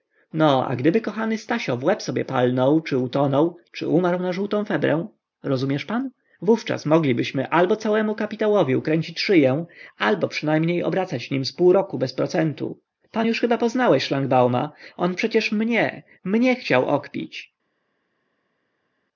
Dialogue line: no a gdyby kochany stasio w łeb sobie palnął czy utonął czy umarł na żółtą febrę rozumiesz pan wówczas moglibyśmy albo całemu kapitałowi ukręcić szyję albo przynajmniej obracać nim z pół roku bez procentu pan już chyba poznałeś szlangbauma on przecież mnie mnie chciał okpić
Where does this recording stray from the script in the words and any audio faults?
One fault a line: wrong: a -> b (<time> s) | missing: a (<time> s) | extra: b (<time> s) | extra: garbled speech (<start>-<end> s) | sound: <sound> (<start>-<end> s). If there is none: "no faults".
no faults